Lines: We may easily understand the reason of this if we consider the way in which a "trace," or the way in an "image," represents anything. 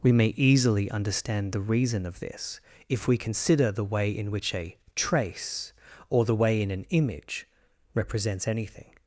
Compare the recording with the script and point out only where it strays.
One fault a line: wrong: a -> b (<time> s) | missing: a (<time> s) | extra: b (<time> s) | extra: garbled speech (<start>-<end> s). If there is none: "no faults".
no faults